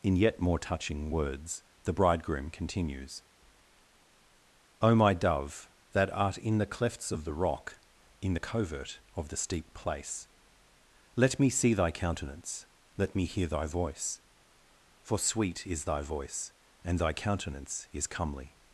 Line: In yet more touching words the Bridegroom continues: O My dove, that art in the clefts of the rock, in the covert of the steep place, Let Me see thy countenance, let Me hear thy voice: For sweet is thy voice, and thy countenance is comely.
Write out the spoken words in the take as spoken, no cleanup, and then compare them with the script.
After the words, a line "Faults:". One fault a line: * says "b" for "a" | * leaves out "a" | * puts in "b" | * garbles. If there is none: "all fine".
In yet more touching words the Bridegroom continues: O My dove, that art in the clefts of the rock, in the covert of the steep place, Let Me see thy countenance, let Me hear thy voice: For sweet is thy voice, and thy countenance is comely.
Faults:
all fine